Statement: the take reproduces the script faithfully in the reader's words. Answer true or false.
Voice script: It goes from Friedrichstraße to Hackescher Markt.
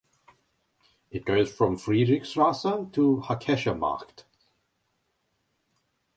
true